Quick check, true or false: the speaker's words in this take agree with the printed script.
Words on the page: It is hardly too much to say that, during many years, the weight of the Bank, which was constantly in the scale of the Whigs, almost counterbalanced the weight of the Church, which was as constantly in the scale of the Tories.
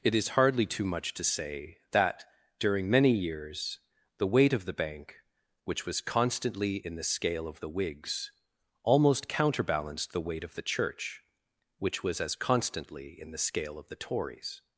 true